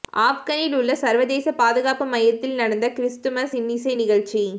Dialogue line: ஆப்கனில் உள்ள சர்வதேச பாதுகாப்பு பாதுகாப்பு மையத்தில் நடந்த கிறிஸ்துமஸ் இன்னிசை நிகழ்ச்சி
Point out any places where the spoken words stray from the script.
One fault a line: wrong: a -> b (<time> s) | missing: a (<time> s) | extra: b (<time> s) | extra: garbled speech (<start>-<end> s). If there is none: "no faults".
missing: பாதுகாப்பு (2.1 s)